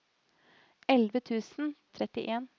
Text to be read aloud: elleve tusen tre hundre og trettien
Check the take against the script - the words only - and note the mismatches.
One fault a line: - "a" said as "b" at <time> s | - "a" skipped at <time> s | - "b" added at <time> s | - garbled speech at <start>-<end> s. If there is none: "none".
- "tre hundre" skipped at 1.7 s